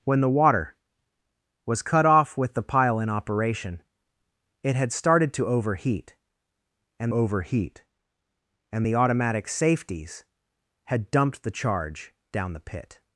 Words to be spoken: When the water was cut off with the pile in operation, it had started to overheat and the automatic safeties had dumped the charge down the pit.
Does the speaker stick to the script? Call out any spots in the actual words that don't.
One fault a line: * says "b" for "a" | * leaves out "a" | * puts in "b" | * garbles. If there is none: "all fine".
* puts in "overheat and"